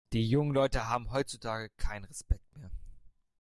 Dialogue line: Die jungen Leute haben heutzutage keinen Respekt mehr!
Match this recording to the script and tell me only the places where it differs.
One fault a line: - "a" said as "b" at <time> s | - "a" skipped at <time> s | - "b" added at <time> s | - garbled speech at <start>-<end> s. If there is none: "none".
none